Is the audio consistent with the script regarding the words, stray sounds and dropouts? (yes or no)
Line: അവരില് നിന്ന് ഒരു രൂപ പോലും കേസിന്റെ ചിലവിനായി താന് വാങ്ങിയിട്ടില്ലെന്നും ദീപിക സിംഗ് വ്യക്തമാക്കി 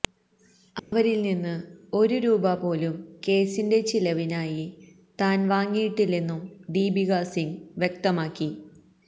no